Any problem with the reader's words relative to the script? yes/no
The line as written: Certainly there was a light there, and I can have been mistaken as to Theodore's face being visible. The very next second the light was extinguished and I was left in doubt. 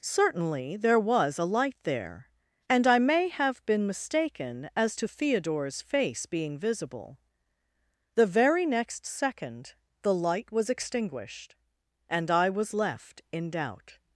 yes